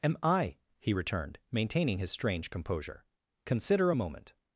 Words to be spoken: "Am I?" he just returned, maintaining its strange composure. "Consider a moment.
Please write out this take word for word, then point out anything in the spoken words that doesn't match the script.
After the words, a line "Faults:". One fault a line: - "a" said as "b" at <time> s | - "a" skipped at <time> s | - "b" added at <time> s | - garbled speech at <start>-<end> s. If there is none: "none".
"Am I?" he returned, maintaining his strange composure. "Consider a moment.
Faults:
- "just" skipped at 0.9 s
- "its" said as "his" at 2.0 s